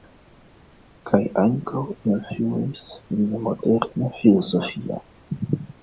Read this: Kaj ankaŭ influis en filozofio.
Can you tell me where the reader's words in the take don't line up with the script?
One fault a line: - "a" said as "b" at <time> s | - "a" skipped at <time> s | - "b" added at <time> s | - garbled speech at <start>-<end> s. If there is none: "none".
- "la moderna" added at 3.4 s